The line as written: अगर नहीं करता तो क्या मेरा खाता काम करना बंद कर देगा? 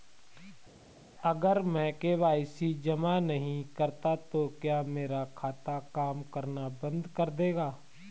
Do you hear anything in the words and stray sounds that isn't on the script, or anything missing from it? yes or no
yes